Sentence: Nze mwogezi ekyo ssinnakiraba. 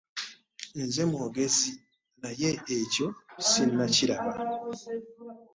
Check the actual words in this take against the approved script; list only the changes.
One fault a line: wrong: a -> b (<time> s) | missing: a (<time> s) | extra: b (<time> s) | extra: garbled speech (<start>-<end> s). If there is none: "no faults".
extra: naye (2.2 s)